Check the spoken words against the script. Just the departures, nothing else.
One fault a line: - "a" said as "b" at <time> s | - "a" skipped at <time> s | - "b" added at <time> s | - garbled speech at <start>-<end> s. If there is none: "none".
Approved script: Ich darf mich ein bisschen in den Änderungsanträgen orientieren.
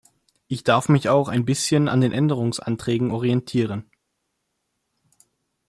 - "auch" added at 1.1 s
- "in" said as "an" at 1.9 s